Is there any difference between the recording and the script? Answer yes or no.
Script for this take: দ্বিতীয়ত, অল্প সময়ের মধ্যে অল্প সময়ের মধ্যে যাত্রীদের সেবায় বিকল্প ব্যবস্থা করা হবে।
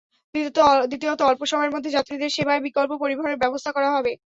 yes